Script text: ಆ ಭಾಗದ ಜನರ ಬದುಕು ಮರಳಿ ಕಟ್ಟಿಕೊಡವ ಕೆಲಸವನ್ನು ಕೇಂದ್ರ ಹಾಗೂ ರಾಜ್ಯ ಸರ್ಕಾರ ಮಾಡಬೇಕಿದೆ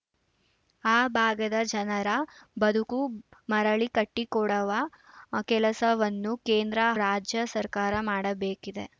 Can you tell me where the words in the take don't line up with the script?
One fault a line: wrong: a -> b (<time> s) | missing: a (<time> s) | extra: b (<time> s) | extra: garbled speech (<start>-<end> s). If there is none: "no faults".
missing: ಹಾಗೂ (6.8 s)